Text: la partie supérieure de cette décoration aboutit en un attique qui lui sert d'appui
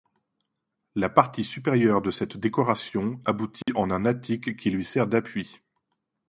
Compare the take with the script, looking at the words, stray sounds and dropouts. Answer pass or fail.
fail